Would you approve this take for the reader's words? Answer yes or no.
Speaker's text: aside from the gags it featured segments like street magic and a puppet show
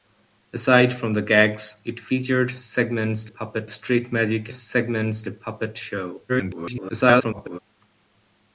no